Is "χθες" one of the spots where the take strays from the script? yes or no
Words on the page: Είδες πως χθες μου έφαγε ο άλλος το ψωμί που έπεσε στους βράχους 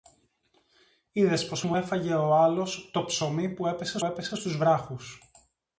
yes